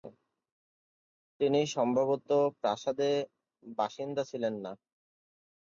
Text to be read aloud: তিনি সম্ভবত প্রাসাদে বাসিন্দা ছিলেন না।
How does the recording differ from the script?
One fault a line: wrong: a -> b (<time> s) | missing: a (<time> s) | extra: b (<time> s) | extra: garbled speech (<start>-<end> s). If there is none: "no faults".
no faults